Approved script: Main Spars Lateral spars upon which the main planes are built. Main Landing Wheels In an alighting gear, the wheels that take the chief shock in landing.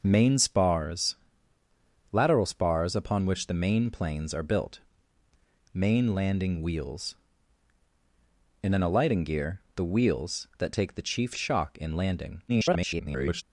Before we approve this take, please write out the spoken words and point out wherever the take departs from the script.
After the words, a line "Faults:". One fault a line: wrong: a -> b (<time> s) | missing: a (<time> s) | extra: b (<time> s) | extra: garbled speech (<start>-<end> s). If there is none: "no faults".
Main Spars Lateral spars upon which the main planes are built. Main Landing Wheels In an alighting gear, the wheels that take the chief shock in landing. [garbled]
Faults:
extra: garbled speech (12.5-13.4 s)